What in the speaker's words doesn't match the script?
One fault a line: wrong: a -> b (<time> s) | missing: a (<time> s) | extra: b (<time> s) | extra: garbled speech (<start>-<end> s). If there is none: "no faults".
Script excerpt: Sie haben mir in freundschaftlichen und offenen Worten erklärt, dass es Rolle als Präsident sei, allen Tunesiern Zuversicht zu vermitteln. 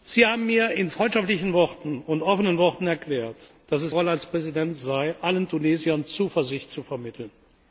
no faults